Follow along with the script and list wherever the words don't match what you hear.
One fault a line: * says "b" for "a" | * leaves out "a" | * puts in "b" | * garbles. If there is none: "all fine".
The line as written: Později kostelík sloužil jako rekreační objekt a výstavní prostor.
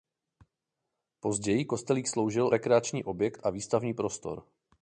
* leaves out "jako"